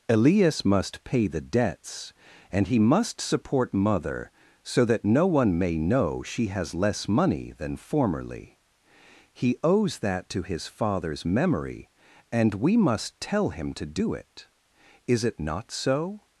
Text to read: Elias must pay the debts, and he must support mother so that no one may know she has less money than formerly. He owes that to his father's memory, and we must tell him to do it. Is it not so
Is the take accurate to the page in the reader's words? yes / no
yes